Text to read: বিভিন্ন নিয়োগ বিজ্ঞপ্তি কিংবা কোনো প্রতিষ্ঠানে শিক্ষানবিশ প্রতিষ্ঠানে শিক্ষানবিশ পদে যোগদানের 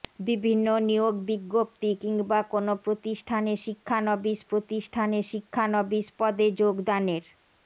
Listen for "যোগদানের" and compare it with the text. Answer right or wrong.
right